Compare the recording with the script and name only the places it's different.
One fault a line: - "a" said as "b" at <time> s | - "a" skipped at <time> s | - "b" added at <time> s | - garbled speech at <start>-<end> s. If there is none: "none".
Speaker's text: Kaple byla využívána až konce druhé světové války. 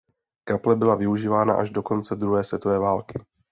- "do" added at 1.7 s